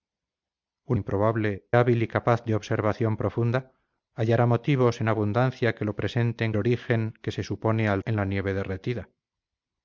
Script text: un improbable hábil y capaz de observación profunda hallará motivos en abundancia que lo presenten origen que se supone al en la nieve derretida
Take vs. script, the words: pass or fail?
pass